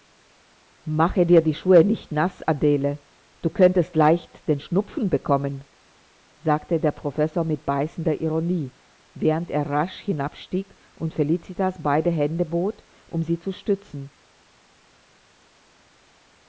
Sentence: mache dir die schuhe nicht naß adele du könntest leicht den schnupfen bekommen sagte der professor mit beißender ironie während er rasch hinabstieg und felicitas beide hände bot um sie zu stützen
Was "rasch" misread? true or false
false